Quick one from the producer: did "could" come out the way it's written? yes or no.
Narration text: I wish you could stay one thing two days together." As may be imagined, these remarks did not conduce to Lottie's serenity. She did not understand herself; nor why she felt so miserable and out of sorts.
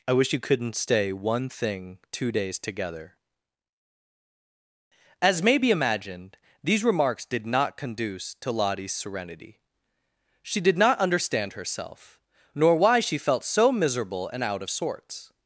no